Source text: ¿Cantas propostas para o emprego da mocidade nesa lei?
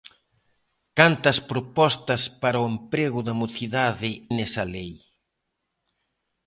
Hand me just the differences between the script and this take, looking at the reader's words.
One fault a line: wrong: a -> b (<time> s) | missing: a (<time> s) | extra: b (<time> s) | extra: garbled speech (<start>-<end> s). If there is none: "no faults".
no faults